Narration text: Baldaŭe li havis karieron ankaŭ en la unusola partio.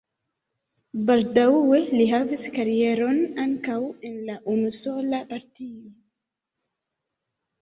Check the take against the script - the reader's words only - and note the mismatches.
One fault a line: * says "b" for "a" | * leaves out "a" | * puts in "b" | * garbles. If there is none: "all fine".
all fine